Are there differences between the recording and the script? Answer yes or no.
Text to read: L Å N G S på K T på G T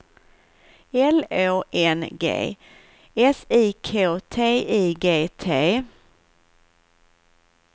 yes